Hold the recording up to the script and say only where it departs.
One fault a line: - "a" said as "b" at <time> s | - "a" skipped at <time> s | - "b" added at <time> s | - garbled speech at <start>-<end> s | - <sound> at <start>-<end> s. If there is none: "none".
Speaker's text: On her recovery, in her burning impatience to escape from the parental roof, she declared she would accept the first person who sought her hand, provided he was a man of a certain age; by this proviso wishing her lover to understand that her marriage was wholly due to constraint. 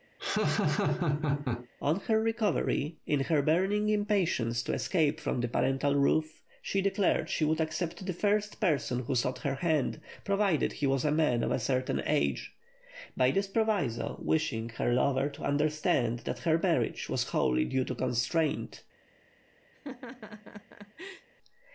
- laugh at 0.2-1.7 s
- laugh at 19.7-21.3 s